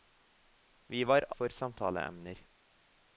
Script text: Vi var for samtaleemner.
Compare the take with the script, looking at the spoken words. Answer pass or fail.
pass